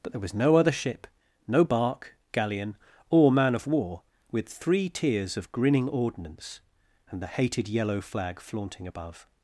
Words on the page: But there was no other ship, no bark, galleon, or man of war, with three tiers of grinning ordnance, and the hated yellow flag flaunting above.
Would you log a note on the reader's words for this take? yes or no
no